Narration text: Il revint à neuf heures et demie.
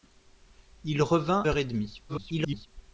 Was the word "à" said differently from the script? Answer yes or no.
yes